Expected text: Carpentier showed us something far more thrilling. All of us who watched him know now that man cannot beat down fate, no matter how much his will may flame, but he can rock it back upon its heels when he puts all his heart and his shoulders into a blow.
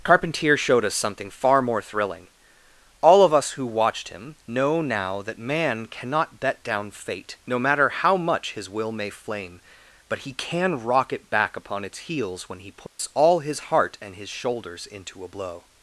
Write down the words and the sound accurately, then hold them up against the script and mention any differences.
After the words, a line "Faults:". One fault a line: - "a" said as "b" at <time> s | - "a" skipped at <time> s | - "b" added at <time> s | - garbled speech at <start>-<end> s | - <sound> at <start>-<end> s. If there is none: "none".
Carpentier showed us something far more thrilling. All of us who watched him know now that man cannot bet down fate, no matter how much his will may flame, but he can rock it back upon its heels when he puts all his heart and his shoulders into a blow.
Faults:
- "beat" said as "bet" at 6.4 s
- dropout at 12.9-13.0 s